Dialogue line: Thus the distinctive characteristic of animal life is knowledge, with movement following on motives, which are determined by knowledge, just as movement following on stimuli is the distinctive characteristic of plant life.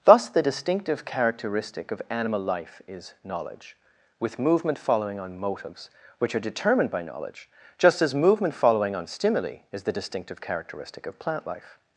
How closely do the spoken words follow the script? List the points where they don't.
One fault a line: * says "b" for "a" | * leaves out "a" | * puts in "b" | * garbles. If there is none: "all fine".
all fine